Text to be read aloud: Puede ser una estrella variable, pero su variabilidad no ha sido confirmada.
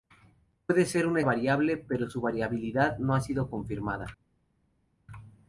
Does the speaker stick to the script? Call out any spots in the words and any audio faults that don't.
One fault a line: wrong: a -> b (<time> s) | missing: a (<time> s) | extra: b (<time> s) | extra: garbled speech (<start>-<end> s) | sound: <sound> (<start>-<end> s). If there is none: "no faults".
missing: estrella (1.2 s)